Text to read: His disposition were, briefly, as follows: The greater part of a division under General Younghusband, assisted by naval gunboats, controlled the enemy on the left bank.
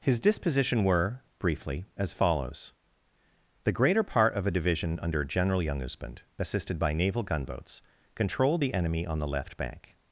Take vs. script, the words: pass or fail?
pass